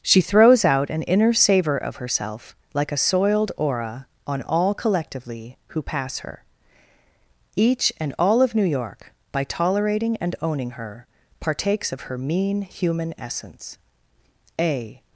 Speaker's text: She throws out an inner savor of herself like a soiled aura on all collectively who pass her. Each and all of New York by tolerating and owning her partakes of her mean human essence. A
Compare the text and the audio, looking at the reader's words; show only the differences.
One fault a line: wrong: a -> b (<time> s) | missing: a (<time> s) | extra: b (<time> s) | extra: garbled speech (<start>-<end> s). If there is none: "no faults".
no faults